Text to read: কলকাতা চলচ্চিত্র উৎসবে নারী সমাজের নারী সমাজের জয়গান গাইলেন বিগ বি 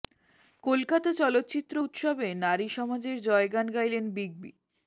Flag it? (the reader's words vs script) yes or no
yes